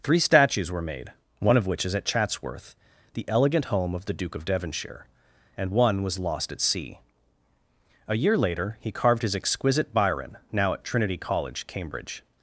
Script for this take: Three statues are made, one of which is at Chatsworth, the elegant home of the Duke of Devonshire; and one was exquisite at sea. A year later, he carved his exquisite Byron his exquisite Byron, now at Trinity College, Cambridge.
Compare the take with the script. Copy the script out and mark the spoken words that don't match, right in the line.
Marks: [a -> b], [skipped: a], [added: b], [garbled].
Three statues [are -> were] made, one of which is at Chatsworth, the elegant home of the Duke of Devonshire; and one was [exquisite -> lost] at sea. A year later, he carved his exquisite Byron [skipped: his exquisite Byron,] now at Trinity College, Cambridge.